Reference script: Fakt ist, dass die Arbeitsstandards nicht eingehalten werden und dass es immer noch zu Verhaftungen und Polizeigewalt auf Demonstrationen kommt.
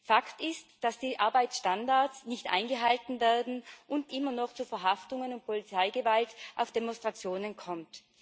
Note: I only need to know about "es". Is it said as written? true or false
false